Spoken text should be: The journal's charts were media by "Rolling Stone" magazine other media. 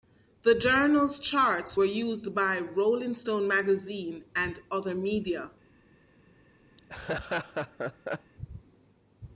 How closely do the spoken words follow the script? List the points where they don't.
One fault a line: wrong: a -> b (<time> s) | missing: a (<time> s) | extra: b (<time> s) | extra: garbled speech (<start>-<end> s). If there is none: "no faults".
wrong: media -> used (1.8 s)
extra: and (4.3 s)